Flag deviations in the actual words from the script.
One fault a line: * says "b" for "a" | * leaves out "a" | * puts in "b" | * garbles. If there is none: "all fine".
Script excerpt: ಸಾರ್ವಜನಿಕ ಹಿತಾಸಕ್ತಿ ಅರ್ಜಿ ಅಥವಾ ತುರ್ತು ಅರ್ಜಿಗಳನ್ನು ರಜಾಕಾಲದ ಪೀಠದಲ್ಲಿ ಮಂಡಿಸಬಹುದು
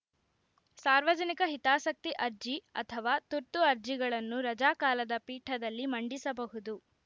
all fine